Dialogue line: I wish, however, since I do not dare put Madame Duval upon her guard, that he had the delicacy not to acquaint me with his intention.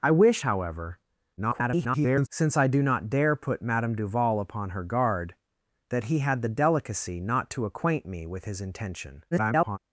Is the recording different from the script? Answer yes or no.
yes